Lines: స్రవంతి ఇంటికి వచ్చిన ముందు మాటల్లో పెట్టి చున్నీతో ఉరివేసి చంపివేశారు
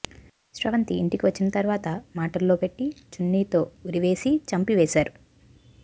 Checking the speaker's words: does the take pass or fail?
fail